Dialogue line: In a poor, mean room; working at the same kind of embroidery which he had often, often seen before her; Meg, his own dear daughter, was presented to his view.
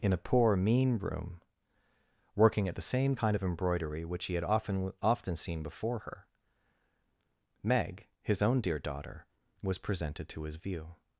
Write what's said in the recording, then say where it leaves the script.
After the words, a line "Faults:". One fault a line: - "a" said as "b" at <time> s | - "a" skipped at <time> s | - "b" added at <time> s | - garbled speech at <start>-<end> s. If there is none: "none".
In a poor, mean room; working at the same kind of embroidery which he had often, often seen before her; Meg, his own dear daughter, was presented to his view.
Faults:
none